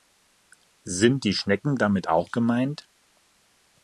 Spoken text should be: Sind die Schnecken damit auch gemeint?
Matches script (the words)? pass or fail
pass